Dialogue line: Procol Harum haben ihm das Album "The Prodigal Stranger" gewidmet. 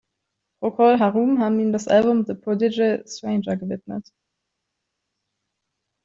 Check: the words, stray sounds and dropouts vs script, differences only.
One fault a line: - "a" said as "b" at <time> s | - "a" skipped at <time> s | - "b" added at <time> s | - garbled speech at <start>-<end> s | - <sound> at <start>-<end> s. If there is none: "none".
none